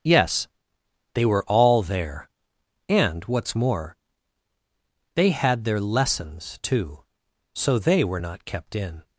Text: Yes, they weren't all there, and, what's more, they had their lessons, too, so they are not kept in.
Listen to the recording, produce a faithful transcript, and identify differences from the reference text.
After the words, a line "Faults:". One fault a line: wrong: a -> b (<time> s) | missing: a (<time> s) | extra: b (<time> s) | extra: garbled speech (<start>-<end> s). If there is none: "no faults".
Yes, they were all there, and, what's more, they had their lessons, too, so they were not kept in.
Faults:
wrong: weren't -> were (1.2 s)
wrong: are -> were (8.0 s)